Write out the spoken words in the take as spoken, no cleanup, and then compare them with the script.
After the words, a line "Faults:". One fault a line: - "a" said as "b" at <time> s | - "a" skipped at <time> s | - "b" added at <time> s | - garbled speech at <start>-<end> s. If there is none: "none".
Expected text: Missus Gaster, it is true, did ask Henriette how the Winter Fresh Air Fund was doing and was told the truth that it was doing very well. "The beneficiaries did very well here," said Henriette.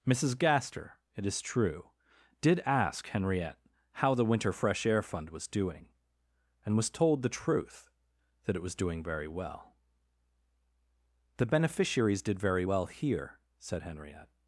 Missus Gaster, it is true, did ask Henriette how the Winter Fresh Air Fund was doing and was told the truth that it was doing very well. "The beneficiaries did very well here," said Henriette.
Faults:
none